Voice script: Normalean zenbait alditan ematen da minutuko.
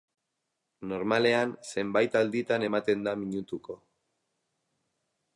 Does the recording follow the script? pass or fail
pass